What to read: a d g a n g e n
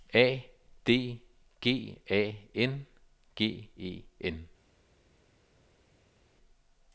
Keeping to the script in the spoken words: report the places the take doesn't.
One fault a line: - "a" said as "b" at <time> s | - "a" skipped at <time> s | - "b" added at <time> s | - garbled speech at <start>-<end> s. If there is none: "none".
none